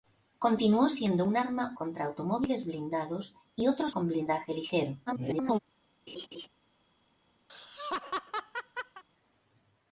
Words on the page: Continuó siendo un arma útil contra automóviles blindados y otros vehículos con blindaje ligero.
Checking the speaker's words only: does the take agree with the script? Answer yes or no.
no